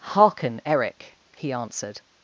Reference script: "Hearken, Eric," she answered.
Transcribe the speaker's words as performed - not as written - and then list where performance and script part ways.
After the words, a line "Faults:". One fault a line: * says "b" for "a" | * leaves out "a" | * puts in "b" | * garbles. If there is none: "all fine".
"Hearken, Eric," he answered.
Faults:
* says "he" for "she"